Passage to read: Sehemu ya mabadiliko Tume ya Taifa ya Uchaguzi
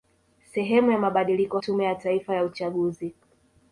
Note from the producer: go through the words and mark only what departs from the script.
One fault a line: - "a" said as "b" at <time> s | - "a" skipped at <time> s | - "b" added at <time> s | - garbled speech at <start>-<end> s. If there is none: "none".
none